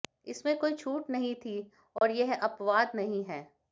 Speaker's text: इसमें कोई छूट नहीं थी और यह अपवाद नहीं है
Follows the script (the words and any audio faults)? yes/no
no